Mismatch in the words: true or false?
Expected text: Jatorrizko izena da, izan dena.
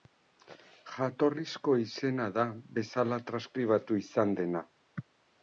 true